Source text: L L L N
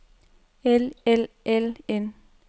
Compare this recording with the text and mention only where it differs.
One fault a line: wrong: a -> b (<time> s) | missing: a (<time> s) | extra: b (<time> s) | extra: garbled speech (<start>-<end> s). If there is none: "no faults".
no faults